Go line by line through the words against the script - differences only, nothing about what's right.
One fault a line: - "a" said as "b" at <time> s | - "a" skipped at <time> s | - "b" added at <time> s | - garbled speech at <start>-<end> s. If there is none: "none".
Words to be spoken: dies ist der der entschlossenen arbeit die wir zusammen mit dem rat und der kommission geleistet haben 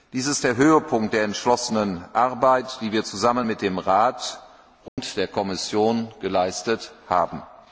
- "höhepunkt" added at 0.6 s